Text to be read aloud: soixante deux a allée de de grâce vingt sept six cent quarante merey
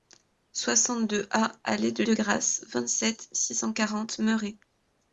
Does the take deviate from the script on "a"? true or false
false